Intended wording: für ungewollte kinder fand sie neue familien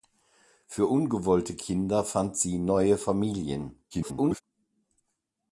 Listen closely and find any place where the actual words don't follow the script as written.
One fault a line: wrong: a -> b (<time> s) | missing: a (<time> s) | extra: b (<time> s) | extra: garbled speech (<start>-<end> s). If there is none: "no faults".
extra: garbled speech (3.9-4.4 s)